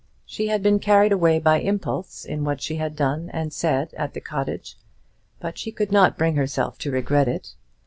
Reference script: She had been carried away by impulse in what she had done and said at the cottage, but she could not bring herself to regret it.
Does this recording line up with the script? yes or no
yes